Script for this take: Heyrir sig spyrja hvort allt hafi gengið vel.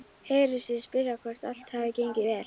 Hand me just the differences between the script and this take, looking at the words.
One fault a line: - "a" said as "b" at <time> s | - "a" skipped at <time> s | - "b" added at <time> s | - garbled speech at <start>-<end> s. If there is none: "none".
none